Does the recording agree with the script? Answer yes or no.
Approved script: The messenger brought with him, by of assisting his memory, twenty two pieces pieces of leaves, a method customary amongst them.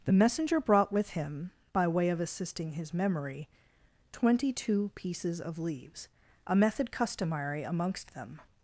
no